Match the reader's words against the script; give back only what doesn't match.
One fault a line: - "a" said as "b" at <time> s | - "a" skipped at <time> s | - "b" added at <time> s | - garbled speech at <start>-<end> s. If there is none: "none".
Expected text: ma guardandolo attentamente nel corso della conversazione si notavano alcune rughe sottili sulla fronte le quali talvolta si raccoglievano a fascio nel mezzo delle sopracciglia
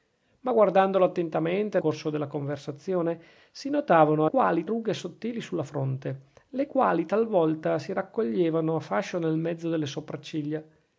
- "nel" skipped at 1.8 s
- "alcune" said as "quali" at 4.2 s